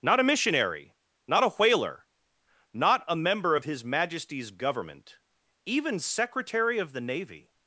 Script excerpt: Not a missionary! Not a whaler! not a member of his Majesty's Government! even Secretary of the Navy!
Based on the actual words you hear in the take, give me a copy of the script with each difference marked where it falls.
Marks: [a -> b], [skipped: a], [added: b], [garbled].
Not a missionary! Not a whaler! not a member of his Majesty's Government! even Secretary of the Navy!